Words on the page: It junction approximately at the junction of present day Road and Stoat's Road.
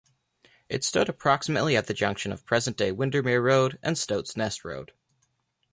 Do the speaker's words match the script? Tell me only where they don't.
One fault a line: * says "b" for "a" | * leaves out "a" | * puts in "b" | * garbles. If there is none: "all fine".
* says "stood" for "junction"
* puts in "Windermere"
* puts in "Nest"